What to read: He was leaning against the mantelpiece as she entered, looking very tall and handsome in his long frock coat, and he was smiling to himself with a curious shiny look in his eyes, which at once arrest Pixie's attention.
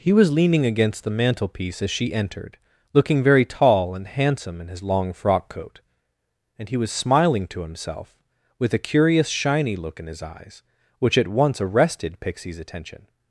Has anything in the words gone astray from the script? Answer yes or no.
yes